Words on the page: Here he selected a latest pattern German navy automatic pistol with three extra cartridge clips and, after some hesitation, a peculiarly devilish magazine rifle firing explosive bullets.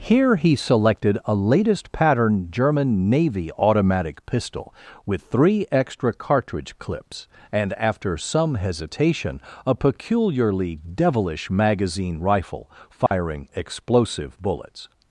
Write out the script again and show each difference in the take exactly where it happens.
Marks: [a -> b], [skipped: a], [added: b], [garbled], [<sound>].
Here he selected a latest pattern German navy automatic pistol with three extra cartridge clips and, after some hesitation, a peculiarly devilish magazine rifle firing [dropout] explosive bullets.